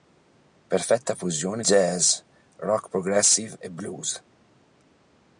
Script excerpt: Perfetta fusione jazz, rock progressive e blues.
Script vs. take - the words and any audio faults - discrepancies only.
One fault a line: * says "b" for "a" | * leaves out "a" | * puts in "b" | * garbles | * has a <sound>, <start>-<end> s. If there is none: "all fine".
all fine